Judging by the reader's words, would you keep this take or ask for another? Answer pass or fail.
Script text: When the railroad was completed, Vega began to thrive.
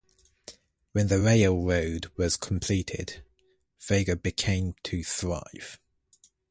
pass